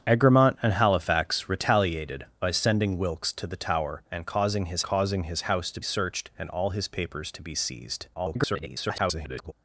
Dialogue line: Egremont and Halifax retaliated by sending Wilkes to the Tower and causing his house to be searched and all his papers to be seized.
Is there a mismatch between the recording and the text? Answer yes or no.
yes